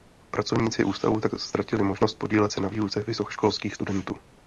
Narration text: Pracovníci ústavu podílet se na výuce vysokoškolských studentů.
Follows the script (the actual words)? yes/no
no